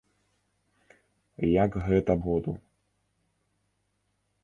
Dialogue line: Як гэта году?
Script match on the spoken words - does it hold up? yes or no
yes